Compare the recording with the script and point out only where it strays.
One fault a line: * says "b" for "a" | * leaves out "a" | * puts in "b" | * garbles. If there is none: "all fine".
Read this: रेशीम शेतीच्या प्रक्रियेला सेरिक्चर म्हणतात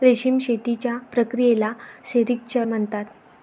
all fine